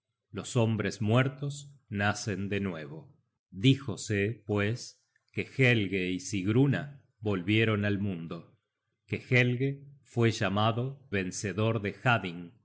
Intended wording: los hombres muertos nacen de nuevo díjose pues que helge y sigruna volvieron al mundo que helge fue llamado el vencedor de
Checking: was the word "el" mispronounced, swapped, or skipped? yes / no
yes